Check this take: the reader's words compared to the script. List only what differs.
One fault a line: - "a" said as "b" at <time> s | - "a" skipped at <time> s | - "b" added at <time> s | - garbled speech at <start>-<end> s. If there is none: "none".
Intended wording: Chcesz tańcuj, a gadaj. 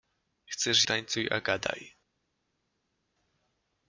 none